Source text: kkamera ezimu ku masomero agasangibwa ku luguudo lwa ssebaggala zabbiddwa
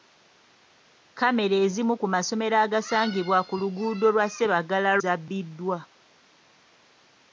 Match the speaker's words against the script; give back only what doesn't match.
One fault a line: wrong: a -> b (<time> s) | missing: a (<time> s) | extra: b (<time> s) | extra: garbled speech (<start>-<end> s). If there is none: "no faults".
no faults